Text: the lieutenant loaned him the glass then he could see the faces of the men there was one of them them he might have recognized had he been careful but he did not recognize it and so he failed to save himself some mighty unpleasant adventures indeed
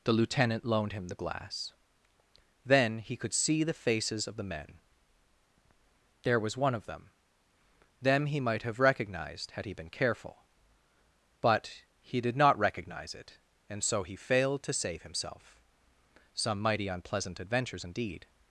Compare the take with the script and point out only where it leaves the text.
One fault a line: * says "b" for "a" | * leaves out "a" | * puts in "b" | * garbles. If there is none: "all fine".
all fine